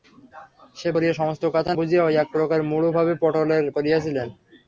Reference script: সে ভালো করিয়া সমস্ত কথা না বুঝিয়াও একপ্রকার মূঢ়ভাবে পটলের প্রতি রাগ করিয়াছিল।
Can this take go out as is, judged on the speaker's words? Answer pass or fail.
fail